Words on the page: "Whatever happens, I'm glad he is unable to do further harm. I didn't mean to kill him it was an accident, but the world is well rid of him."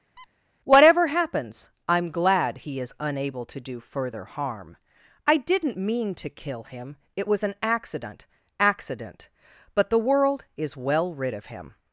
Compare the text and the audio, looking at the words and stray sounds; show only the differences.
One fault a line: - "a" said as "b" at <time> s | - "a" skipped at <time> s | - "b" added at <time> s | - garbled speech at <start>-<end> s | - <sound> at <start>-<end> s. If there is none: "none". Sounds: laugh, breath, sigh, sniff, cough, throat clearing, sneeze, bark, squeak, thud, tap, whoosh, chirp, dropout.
- squeak at 0.2-0.3 s
- "accident" added at 8.6 s